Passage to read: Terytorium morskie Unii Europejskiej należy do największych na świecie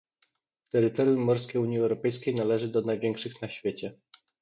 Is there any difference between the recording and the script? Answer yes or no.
no